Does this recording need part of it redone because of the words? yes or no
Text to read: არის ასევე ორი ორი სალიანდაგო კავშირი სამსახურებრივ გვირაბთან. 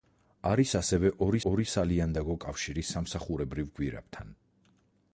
no